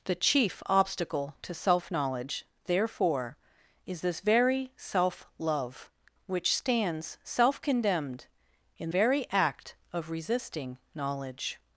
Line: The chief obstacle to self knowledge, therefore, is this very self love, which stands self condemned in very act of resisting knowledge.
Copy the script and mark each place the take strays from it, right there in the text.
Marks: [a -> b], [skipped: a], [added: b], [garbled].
The chief obstacle to self knowledge, therefore, is this very self love, which stands self condemned in very act of resisting knowledge.